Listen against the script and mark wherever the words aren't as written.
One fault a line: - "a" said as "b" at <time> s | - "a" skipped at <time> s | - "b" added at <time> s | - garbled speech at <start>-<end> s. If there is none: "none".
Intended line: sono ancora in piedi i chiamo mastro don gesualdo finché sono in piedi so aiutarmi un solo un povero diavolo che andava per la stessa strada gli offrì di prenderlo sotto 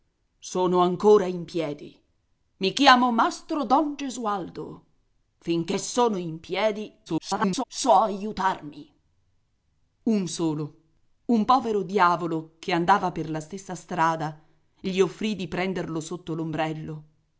- garbled speech at 7.1-7.6 s